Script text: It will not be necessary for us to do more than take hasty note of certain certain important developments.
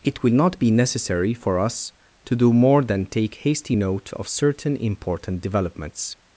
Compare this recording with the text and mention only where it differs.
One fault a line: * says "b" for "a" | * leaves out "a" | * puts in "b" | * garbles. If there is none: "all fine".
* leaves out "certain"